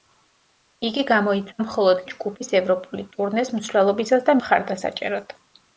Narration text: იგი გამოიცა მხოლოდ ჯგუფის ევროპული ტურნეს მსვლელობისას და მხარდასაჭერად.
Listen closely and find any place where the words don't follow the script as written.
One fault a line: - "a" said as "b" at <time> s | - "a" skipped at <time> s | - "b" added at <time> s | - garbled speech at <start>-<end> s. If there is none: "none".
none